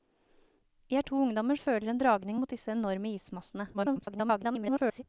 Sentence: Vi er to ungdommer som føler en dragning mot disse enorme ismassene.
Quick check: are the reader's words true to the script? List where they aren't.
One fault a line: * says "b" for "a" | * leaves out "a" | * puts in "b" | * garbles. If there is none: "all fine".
* leaves out "som"
* garbles